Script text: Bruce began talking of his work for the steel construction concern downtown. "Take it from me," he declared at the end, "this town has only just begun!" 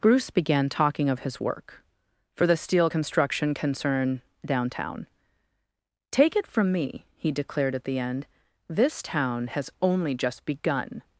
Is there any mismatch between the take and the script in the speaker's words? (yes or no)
no